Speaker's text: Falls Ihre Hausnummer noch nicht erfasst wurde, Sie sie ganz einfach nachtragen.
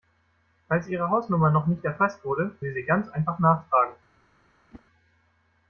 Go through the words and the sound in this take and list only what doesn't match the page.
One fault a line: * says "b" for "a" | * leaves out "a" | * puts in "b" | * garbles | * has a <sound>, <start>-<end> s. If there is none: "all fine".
* has a whoosh, 4.7-4.8 s